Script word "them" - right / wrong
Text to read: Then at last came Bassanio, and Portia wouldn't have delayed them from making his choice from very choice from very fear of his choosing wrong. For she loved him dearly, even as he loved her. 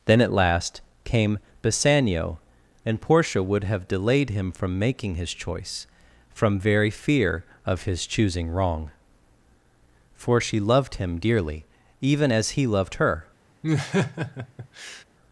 wrong